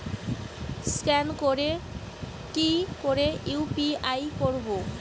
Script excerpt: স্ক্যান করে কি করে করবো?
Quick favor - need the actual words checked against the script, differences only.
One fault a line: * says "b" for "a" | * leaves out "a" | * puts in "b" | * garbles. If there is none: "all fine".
* puts in "ইউ.পি.আই"